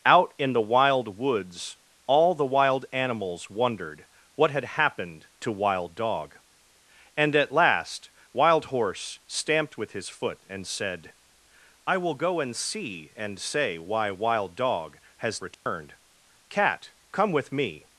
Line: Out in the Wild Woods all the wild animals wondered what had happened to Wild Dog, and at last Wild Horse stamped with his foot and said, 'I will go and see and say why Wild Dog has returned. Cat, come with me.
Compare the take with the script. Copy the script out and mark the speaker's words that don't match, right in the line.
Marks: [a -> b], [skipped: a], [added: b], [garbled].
Out in the Wild Woods all the wild animals wondered what had happened to Wild Dog, and at last Wild Horse stamped with his foot and said, 'I will go and see and say why Wild Dog has returned. Cat, come with me.